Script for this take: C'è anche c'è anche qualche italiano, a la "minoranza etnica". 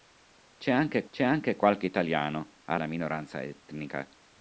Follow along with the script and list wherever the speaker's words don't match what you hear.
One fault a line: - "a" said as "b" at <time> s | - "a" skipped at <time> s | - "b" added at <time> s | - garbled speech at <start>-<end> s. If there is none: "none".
none